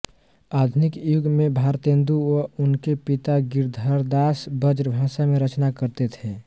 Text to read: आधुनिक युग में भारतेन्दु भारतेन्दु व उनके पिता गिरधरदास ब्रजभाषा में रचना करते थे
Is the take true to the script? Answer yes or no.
no